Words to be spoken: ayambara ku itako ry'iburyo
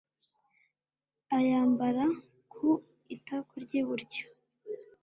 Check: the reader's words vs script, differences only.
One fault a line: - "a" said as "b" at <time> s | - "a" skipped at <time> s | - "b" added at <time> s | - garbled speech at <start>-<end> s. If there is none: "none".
none